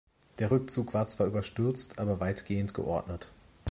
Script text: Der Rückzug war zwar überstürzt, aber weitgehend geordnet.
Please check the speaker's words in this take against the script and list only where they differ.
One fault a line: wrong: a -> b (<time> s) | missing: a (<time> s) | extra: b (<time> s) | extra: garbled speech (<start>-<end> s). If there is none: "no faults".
no faults